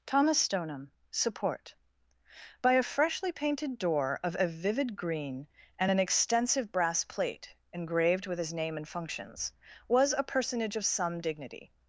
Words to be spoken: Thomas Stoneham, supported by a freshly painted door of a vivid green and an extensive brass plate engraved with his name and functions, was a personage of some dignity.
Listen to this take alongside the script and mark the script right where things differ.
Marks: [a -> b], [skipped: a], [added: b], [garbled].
Thomas Stoneham, [supported -> support] by a freshly painted door of a vivid green and an extensive brass plate engraved with his name and functions, was a personage of some dignity.